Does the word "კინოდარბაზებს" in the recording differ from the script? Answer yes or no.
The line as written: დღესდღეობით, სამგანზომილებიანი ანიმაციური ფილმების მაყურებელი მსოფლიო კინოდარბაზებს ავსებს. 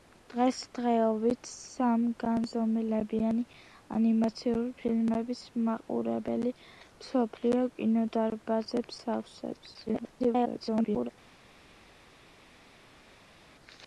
no